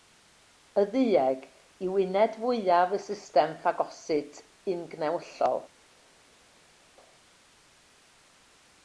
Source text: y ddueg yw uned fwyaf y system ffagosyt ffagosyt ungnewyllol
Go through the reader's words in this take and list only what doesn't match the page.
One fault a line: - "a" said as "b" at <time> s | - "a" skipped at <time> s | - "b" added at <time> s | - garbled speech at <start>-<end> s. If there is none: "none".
- "ffagosyt" skipped at 4.4 s